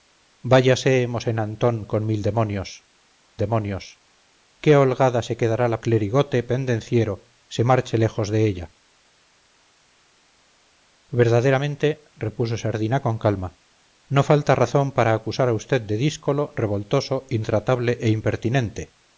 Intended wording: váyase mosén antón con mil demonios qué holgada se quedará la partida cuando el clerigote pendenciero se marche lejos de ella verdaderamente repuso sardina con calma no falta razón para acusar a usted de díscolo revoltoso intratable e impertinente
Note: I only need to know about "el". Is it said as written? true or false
false